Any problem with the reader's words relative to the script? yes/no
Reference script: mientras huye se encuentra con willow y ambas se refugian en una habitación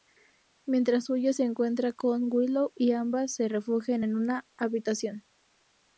no